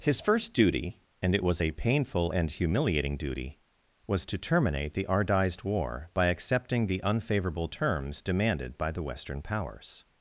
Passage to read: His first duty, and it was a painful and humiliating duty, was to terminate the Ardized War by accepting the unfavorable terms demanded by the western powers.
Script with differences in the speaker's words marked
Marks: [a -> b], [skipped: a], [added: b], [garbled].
His first duty, and it was a painful and humiliating duty, was to terminate the Ardized War by accepting the unfavorable terms demanded by the western powers.